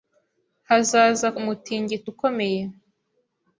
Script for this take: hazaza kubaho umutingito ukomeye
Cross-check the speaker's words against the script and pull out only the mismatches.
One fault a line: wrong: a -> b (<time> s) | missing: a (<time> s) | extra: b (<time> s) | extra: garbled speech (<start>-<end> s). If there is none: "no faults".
missing: kubaho (1.3 s)